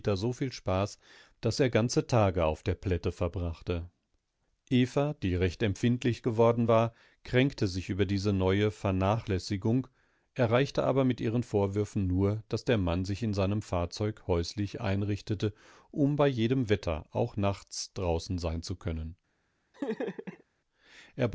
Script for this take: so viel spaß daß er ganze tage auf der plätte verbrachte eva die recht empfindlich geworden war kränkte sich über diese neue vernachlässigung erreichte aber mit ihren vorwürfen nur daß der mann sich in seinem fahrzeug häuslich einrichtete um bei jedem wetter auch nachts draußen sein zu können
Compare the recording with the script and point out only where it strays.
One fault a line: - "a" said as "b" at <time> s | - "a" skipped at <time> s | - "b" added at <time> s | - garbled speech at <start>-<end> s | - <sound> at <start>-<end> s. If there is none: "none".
- laugh at 19.7-20.4 s